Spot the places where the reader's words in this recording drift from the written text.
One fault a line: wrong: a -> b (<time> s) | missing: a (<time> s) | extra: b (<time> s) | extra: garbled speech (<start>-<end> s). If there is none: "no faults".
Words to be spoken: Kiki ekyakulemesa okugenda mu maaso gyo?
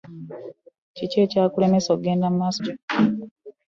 no faults